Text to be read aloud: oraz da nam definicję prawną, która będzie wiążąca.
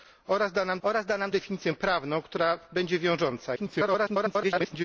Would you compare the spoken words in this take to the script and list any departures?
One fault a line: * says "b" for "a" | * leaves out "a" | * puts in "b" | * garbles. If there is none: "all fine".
* puts in "oraz da nam"
* garbles